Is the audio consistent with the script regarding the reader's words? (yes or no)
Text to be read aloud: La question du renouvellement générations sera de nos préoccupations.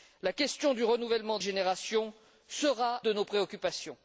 yes